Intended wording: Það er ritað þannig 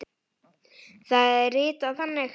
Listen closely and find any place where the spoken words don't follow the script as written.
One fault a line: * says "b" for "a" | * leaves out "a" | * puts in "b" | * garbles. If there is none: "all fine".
all fine